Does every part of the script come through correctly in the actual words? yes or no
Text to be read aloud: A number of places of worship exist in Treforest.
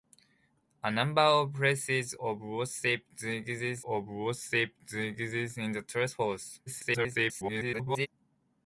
no